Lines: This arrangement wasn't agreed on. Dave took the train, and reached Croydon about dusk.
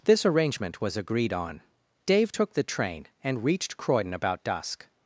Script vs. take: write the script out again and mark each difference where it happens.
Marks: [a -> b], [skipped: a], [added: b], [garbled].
This arrangement [wasn't -> was] agreed on. Dave took the train, and reached Croydon about dusk.